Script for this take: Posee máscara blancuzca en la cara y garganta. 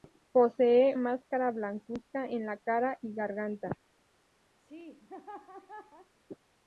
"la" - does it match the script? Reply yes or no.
yes